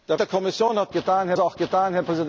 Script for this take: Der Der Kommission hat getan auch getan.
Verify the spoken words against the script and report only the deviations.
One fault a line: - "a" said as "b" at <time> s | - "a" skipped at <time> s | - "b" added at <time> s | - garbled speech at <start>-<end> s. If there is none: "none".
none